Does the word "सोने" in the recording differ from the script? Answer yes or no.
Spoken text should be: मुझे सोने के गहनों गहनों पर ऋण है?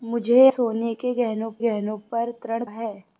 no